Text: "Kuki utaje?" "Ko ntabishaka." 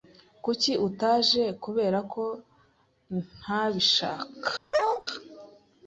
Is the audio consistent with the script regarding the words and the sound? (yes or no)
no